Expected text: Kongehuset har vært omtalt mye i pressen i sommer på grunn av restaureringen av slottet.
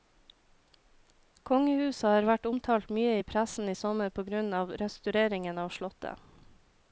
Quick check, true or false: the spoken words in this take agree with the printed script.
true